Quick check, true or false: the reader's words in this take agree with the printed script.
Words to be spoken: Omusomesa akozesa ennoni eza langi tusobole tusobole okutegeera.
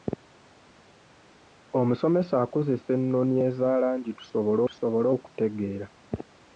true